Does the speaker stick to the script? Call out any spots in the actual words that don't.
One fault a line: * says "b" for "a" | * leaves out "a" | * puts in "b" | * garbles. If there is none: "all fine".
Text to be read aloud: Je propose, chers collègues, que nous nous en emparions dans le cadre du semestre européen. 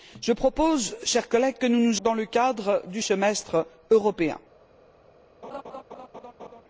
* leaves out "en emparions"